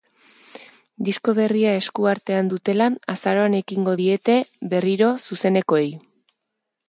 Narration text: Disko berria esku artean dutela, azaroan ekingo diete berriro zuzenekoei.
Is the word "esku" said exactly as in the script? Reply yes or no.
yes